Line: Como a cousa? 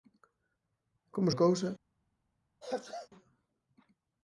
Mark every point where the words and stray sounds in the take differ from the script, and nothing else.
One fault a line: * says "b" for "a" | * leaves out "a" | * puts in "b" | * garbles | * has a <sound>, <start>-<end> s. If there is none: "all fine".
* has a sneeze, 2.6-3.1 s